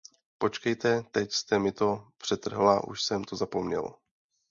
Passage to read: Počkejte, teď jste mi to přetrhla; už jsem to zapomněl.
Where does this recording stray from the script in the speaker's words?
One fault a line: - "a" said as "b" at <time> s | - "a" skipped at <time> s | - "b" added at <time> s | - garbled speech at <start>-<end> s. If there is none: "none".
none